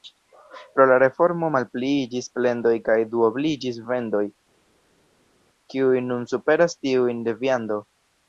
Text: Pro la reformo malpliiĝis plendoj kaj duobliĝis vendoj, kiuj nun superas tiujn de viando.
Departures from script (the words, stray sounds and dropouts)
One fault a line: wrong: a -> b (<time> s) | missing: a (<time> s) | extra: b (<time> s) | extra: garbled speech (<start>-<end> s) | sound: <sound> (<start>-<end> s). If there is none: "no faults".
no faults